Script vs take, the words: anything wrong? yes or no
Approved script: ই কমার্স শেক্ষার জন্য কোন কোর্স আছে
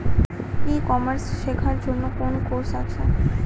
no